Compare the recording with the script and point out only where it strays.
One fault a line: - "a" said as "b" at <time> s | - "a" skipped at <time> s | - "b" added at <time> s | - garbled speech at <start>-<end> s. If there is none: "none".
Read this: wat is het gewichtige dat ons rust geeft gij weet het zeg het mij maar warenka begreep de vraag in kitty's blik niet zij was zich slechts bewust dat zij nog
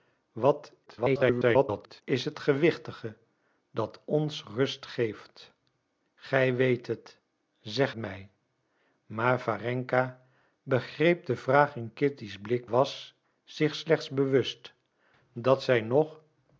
- garbled speech at 0.9-2.0 s
- "het" skipped at 7.9 s
- "niet zij" skipped at 12.7 s